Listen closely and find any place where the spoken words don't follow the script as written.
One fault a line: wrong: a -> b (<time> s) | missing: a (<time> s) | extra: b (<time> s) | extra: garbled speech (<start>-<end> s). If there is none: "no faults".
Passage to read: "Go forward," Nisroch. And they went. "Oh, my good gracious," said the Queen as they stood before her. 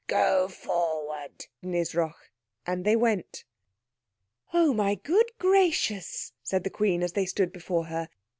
no faults